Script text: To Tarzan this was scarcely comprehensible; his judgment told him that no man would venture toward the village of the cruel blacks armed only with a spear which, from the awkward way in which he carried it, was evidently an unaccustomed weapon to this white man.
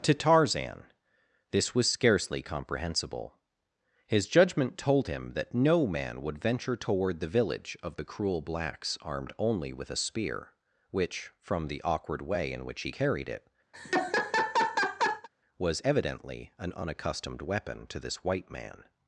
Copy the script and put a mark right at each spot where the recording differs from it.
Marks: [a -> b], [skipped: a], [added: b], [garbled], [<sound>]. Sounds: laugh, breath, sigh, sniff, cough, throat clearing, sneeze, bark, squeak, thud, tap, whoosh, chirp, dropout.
To Tarzan this was scarcely comprehensible; his judgment told him that no man would venture toward the village of the cruel blacks armed only with a spear which, from the awkward way in which he carried it, [laugh] was evidently an unaccustomed weapon to this white man.